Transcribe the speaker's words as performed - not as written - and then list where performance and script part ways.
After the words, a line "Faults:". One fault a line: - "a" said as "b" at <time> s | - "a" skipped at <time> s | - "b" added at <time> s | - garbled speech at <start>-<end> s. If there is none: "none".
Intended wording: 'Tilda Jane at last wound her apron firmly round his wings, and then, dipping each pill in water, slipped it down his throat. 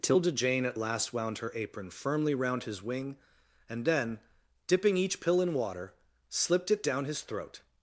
'Tilda Jane at last wound her apron firmly round his wing, and then, dipping each pill in water, slipped it down his throat.
Faults:
- "wings" said as "wing" at 2.8 s